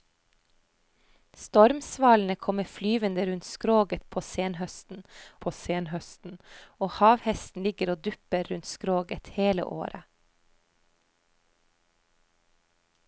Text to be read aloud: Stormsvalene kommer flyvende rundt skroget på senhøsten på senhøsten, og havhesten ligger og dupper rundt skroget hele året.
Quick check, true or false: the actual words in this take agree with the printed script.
true